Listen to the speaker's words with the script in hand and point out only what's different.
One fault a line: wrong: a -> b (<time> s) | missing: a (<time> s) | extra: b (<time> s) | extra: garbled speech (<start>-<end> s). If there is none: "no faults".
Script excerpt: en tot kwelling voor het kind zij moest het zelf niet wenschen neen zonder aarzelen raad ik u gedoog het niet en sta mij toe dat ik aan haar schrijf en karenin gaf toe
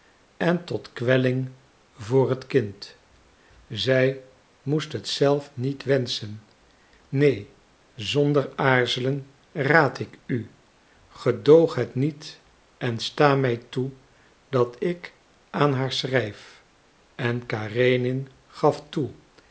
no faults